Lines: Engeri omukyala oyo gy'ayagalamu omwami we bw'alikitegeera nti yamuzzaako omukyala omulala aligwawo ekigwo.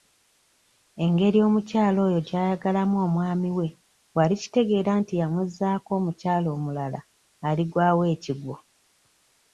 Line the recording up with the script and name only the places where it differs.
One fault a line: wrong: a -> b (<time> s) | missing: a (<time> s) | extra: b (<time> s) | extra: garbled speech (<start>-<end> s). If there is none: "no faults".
no faults